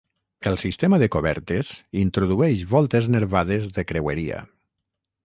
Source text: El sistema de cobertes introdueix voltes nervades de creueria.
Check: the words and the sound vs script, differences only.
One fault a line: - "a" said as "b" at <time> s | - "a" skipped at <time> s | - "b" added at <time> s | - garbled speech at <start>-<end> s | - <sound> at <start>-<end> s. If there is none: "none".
none